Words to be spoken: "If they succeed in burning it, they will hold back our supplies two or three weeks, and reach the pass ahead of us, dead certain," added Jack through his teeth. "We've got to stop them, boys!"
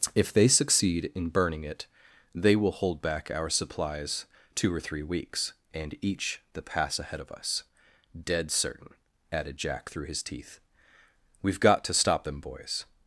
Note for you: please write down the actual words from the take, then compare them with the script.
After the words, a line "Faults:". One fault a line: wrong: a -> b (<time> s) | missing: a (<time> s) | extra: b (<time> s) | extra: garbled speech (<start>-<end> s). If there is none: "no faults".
"If they succeed in burning it, they will hold back our supplies two or three weeks, and each the pass ahead of us, dead certain," added Jack through his teeth. "We've got to stop them, boys!"
Faults:
wrong: reach -> each (6.0 s)